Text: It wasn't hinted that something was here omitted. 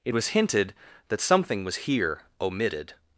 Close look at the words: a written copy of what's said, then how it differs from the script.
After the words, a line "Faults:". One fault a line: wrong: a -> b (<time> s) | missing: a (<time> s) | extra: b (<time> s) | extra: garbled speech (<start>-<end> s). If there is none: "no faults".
It was hinted that something was here omitted.
Faults:
wrong: wasn't -> was (0.1 s)